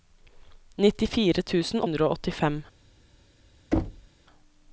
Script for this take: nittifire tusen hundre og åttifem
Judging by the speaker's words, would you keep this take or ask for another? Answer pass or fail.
pass